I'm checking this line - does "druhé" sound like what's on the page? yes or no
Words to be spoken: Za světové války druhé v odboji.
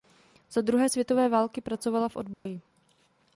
no